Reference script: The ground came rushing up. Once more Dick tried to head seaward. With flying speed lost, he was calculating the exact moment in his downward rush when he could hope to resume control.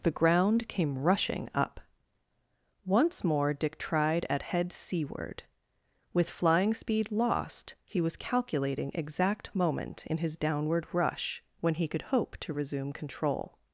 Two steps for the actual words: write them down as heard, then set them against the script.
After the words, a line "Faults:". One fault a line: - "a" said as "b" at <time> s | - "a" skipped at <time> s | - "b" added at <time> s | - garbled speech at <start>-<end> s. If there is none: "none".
The ground came rushing up. Once more Dick tried at head seaward. With flying speed lost, he was calculating exact moment in his downward rush when he could hope to resume control.
Faults:
- "to" said as "at" at 4.3 s
- "the" skipped at 8.9 s